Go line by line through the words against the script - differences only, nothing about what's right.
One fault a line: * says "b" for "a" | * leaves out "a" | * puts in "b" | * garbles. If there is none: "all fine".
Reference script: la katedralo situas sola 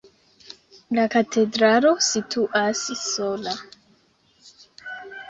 all fine